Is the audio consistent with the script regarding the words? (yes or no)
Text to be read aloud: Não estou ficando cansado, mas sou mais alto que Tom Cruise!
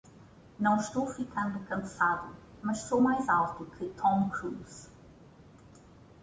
yes